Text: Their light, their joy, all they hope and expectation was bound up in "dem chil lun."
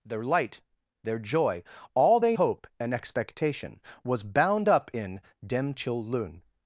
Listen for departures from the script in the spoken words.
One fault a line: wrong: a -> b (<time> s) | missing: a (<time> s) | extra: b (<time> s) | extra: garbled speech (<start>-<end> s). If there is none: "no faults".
no faults